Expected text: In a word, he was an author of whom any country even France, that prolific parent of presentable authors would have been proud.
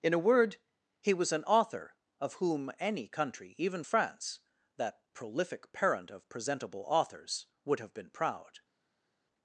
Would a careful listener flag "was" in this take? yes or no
no